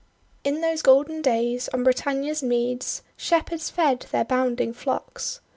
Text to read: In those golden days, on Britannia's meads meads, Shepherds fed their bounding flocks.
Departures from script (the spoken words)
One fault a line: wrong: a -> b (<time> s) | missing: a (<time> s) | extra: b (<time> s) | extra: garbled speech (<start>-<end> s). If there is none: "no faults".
missing: meads (3.0 s)